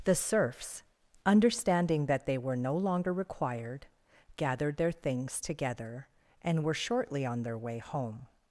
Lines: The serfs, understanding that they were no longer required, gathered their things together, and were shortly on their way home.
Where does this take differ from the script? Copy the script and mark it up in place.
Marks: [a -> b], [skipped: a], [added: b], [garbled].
The serfs, understanding that they were no longer required, gathered their things together, and were shortly on their way home.